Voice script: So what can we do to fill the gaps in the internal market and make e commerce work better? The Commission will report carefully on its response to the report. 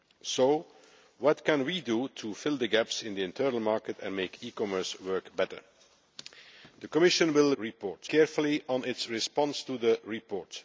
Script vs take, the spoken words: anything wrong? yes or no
no